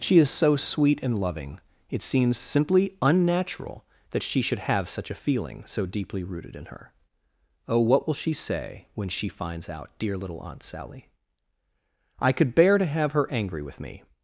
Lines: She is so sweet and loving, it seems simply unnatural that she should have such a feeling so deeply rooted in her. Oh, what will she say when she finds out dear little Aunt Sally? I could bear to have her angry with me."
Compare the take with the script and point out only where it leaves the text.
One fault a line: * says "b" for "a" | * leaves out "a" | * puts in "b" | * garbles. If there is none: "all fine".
all fine